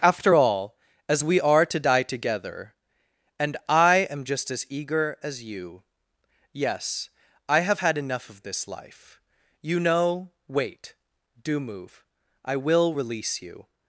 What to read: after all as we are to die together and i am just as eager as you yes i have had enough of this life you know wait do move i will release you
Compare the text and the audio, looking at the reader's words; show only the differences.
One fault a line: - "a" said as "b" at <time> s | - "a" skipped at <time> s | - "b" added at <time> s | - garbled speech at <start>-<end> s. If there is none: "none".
none